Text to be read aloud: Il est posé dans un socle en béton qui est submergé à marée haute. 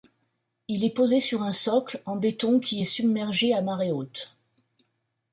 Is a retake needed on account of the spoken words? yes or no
yes